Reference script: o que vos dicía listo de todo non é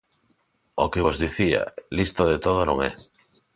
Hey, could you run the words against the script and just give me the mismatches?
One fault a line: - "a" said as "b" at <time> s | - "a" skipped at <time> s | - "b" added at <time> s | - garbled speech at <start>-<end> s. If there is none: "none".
none